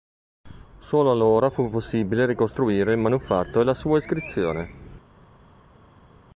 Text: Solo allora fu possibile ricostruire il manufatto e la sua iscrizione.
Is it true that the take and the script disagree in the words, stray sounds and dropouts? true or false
false